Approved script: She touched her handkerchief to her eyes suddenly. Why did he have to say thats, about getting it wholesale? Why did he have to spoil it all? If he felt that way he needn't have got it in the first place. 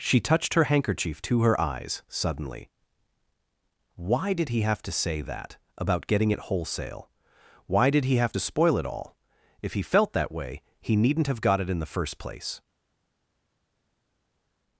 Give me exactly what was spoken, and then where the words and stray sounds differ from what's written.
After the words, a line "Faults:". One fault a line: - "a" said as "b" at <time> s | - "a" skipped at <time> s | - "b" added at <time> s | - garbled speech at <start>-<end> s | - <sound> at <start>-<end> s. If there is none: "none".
She touched her handkerchief to her eyes suddenly. Why did he have to say that, about getting it wholesale? Why did he have to spoil it all? If he felt that way he needn't have got it in the first place.
Faults:
- "thats" said as "that" at 5.2 s